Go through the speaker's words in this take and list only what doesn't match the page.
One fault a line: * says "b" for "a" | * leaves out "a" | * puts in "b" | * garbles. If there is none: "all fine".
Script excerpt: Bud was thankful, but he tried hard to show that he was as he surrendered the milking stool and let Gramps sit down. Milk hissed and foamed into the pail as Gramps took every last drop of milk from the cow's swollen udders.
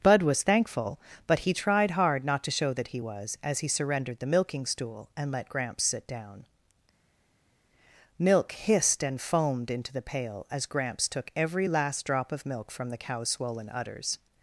* puts in "not"